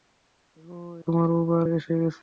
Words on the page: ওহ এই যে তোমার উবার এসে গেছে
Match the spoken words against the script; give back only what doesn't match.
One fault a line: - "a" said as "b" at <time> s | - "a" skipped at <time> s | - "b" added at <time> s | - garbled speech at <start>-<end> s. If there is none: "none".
- "এই যে" skipped at 0.7 s